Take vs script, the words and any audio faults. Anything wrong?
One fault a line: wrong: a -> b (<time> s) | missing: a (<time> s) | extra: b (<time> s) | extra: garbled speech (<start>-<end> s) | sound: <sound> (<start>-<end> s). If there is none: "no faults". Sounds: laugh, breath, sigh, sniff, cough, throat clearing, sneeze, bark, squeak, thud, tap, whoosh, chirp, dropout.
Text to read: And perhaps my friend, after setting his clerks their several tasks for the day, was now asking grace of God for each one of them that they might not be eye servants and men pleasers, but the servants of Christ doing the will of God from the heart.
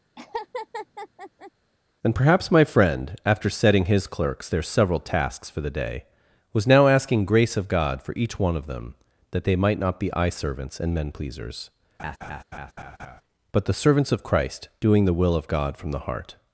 sound: laugh (0.2-1.5 s)
sound: laugh (12.0-13.2 s)